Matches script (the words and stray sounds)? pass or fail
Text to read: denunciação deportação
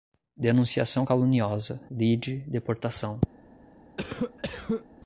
fail